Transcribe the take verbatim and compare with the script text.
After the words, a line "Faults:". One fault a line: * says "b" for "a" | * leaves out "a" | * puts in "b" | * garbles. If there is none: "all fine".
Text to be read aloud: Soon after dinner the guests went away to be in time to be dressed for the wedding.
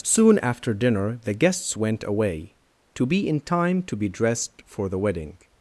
Soon after dinner the guests went away to be in time to be dressed for the wedding.
Faults:
all fine